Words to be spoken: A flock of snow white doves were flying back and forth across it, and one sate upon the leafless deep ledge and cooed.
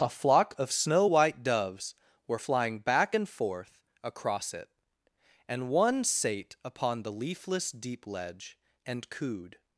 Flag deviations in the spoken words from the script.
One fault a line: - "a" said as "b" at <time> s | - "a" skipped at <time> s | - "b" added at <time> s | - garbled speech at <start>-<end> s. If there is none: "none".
none